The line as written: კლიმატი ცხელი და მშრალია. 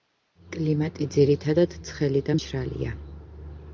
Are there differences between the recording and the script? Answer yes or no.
yes